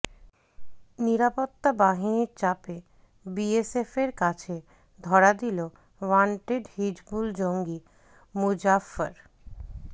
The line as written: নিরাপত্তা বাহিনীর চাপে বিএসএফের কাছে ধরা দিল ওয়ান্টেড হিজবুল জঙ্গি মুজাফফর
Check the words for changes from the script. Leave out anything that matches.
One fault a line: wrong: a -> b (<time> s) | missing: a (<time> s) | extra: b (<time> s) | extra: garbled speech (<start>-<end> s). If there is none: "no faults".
no faults